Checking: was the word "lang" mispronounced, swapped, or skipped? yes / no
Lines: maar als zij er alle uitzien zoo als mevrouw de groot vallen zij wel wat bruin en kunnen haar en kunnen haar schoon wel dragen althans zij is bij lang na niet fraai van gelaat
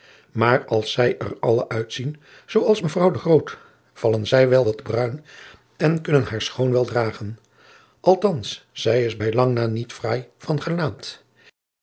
no